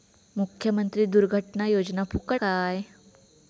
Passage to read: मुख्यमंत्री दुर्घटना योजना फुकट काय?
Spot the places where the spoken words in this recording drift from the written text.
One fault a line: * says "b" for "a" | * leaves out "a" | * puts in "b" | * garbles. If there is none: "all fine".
all fine